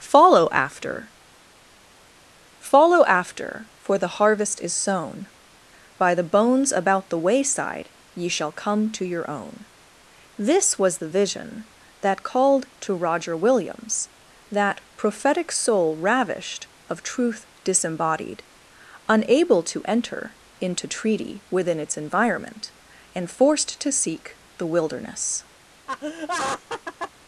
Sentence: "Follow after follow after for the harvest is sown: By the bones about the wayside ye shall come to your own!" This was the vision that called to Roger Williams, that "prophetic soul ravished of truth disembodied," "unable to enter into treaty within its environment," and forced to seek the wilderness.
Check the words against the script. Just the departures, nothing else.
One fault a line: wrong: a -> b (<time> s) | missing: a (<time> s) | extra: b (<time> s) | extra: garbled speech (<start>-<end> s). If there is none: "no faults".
no faults